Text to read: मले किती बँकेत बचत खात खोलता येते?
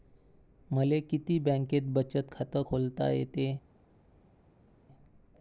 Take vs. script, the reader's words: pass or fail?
pass